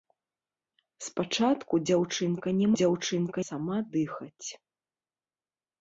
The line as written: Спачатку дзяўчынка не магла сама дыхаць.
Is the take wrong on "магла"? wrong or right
wrong